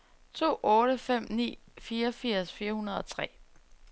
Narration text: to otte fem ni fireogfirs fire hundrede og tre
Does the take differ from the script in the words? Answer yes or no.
no